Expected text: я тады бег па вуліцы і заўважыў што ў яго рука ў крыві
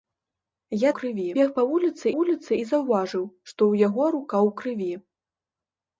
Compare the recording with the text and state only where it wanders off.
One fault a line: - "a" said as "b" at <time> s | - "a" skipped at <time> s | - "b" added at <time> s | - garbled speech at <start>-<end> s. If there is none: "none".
- "тады" said as "крыві" at 1.0 s
- "вуліцы" added at 2.1 s